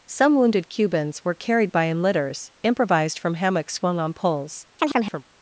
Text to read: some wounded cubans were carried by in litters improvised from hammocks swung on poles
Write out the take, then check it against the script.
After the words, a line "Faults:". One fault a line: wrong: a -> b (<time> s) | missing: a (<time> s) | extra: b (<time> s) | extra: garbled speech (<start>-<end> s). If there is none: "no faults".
some wounded cubans were carried by in litters improvised from hammocks swung on poles
Faults:
no faults